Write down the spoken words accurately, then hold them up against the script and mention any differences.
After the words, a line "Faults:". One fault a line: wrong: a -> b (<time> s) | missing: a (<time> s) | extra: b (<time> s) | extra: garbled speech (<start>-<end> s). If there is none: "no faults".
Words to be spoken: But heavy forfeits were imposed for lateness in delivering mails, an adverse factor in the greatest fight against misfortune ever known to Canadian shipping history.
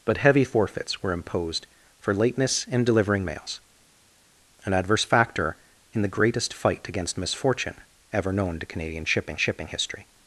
But heavy forfeits were imposed for lateness in delivering mails, an adverse factor in the greatest fight against misfortune ever known to Canadian shipping shipping history.
Faults:
extra: shipping (9.4 s)